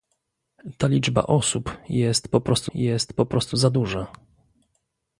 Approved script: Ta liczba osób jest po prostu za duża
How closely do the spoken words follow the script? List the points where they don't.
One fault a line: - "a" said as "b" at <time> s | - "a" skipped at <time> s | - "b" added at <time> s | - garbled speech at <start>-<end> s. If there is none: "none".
- "jest po prostu" added at 2.7 s